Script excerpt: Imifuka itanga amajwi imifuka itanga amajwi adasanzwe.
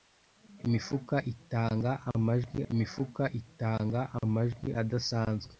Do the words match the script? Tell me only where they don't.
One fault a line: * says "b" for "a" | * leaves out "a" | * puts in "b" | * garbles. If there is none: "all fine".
all fine